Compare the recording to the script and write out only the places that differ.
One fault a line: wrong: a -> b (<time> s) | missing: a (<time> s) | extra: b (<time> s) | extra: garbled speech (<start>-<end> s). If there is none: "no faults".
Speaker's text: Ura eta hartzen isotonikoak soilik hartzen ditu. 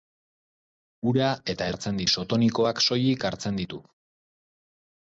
no faults